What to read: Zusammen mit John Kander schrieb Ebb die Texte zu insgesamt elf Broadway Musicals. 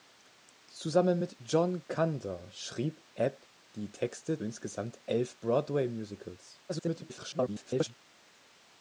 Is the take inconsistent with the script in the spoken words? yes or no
yes